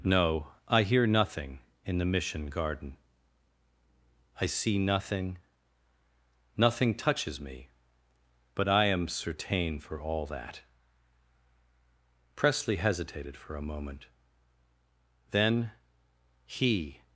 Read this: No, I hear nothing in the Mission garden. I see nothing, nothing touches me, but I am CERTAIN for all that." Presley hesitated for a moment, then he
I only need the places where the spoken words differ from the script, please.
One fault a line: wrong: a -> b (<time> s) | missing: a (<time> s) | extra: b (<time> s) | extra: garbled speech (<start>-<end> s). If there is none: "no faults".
no faults